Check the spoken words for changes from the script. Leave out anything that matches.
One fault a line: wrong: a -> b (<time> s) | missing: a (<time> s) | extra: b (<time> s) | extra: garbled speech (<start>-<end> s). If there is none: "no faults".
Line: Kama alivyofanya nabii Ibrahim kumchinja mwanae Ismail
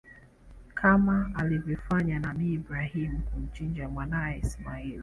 no faults